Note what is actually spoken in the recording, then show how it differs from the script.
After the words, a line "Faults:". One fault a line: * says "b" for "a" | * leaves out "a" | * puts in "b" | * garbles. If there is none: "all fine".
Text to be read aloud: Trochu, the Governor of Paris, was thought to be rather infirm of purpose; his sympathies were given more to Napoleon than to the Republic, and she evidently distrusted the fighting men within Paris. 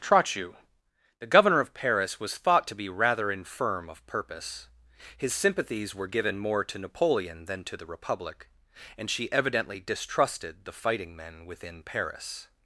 Trochu, the Governor of Paris, was thought to be rather infirm of purpose; his sympathies were given more to Napoleon than to the Republic, and she evidently distrusted the fighting men within Paris.
Faults:
all fine